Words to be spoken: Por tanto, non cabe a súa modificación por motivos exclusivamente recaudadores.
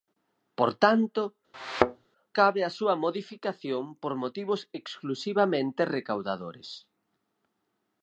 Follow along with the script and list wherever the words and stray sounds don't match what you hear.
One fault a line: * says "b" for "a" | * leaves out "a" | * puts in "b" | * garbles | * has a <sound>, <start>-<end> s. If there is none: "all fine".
* leaves out "non"
* has a thud, 1.5-2.1 s